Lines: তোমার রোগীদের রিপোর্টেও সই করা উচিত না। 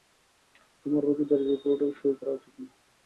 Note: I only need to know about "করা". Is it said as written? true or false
true